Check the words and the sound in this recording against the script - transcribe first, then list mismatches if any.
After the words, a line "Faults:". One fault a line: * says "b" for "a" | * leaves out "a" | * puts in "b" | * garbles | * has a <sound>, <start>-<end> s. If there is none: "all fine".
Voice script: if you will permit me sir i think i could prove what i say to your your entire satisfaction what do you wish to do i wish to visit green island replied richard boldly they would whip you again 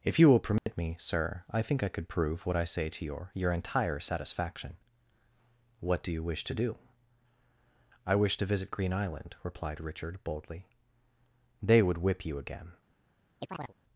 if you will permit me sir i think i could prove what i say to your your entire satisfaction what do you wish to do i wish to visit green island replied richard boldly they would whip you again
Faults:
* has a dropout, 0.6-0.7 s
* has a chirp, 13.4-13.7 s